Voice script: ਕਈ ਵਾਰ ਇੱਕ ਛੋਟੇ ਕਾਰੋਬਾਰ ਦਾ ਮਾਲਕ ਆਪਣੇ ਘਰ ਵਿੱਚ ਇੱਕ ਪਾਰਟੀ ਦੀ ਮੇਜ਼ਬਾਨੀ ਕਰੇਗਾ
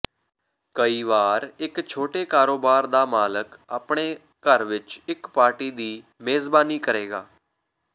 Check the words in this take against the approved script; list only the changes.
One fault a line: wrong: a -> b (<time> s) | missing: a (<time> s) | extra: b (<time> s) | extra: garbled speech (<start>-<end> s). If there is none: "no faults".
no faults